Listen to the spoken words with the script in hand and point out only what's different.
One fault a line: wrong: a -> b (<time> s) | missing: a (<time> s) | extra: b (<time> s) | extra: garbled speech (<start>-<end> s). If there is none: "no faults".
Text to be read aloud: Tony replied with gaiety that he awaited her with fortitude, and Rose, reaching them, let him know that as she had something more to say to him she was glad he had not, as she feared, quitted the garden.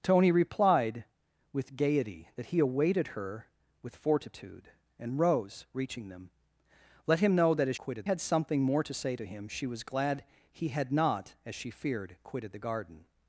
wrong: she -> quitted (7.8 s)